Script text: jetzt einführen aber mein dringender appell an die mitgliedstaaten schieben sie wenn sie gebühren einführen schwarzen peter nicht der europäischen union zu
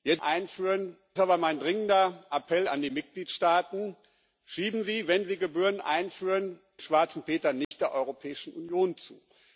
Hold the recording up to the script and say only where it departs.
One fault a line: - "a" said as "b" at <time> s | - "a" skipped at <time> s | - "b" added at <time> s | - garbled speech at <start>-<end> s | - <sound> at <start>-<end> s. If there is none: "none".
- dropout at 7.6-7.7 s